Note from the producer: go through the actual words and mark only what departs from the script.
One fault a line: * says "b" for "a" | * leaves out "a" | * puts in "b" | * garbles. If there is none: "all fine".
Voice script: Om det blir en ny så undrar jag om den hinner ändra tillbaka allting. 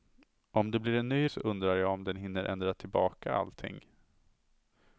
all fine